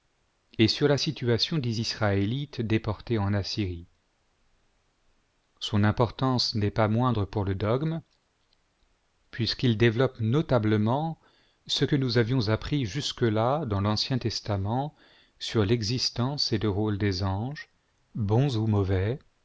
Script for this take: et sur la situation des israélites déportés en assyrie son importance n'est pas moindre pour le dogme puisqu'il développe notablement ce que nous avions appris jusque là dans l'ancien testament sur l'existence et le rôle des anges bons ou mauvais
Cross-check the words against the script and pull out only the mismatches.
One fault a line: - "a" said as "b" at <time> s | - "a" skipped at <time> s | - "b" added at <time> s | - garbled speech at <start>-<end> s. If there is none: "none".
none